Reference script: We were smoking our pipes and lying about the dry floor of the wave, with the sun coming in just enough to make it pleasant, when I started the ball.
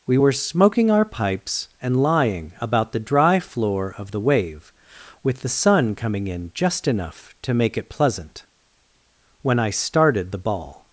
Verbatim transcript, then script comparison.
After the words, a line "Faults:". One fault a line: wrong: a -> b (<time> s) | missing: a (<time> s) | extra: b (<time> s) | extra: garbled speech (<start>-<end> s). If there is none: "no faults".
We were smoking our pipes and lying about the dry floor of the wave, with the sun coming in just enough to make it pleasant, when I started the ball.
Faults:
no faults